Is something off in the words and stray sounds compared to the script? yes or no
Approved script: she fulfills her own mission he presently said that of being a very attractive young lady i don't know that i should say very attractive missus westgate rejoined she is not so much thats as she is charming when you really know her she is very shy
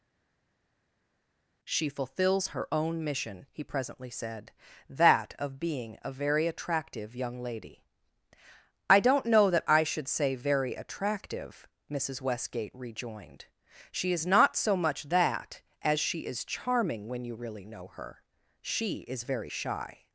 yes